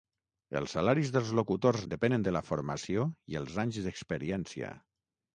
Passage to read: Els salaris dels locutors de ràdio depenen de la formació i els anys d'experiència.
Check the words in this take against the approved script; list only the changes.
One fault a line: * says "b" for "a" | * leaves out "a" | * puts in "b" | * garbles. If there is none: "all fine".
* leaves out "de ràdio"